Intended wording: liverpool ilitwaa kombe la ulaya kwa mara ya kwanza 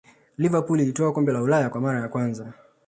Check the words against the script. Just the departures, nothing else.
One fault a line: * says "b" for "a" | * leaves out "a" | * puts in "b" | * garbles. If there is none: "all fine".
all fine